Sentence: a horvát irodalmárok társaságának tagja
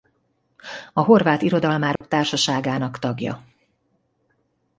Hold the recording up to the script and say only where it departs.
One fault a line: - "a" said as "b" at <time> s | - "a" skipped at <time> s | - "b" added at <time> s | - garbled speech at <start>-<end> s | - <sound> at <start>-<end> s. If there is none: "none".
- dropout at 2.0-2.0 s